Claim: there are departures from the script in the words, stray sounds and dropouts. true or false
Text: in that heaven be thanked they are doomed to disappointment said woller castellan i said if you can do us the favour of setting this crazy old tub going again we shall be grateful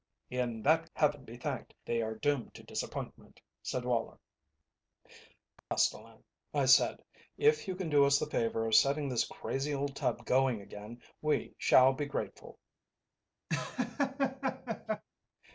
true